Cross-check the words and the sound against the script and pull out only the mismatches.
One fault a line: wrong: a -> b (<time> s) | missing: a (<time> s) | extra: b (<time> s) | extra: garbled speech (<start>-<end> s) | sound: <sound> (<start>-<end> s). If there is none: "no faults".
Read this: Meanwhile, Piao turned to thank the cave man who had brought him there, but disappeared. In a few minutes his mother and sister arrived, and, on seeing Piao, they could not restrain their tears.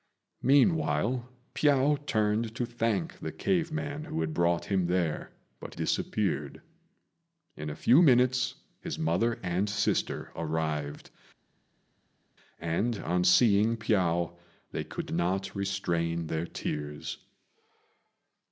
no faults